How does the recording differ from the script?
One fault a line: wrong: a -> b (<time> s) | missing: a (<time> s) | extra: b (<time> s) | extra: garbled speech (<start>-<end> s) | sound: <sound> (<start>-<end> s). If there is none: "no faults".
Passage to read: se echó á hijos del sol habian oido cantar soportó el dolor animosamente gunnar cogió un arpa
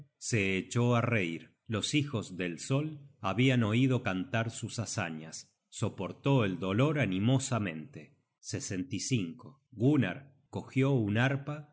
extra: reir los (1.0 s)
extra: sus hazañas (4.5 s)